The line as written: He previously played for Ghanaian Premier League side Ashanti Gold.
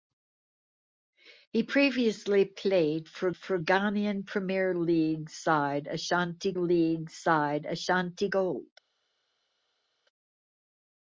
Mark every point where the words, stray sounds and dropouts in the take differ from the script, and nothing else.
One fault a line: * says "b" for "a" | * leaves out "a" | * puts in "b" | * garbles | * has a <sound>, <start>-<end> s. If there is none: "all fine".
* puts in "for"
* puts in "League side Ashanti"